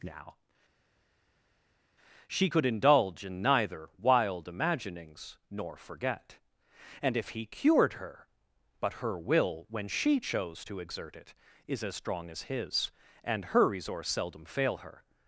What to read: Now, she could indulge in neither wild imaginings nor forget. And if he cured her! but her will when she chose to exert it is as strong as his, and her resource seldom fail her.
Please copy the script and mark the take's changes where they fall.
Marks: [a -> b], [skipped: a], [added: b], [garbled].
Now, she could indulge in neither wild imaginings nor forget. And if he cured her! but her will when she chose to exert it is as strong as his, and her resource seldom fail her.